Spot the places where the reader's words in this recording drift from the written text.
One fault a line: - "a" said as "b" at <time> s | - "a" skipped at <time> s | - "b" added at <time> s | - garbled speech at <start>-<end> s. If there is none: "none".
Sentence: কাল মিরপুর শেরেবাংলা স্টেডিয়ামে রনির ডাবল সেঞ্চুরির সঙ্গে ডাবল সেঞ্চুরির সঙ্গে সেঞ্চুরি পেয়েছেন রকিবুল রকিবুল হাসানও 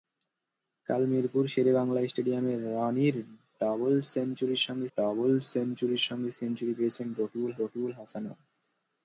none